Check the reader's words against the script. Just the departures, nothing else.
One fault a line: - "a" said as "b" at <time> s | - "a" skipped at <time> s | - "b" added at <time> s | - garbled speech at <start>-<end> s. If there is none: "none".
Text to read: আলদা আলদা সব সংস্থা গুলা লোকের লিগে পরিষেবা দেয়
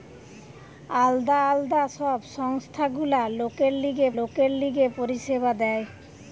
- "লোকের লিগে" added at 4.2 s